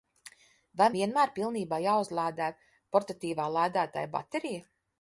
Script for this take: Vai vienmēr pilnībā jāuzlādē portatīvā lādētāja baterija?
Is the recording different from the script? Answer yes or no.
no